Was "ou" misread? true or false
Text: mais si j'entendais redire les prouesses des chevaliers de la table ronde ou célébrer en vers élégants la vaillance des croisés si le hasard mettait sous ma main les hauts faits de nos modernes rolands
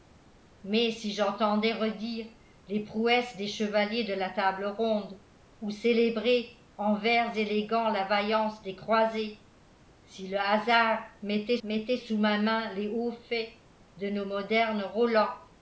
false